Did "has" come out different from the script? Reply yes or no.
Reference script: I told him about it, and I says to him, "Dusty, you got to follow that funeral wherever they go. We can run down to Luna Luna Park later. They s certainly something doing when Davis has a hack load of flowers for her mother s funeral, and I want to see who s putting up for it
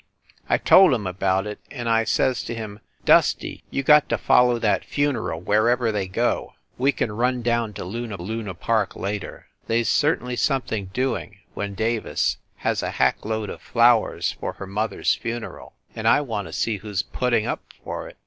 no